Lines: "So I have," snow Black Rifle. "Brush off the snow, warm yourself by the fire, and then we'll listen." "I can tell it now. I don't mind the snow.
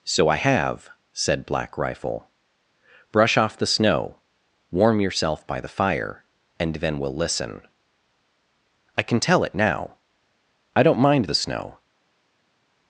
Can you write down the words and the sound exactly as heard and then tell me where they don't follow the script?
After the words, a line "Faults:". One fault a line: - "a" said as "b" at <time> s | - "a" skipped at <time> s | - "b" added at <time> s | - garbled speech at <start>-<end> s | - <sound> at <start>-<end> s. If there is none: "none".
"So I have," said Black Rifle. "Brush off the snow, warm yourself by the fire, and then we'll listen." "I can tell it now. I don't mind the snow.
Faults:
- "snow" said as "said" at 1.1 s